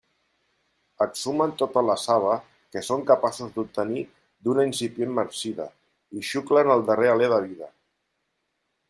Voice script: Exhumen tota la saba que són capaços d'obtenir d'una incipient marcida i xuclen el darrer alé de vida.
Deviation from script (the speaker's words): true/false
false